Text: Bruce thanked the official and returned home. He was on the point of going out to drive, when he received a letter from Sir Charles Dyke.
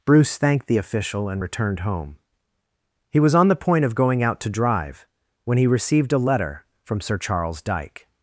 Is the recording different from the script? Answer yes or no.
no